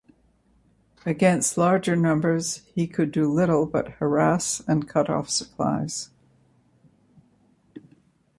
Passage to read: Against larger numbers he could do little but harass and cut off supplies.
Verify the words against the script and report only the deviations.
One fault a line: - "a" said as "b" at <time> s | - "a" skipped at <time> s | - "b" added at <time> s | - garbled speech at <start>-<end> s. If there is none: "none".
none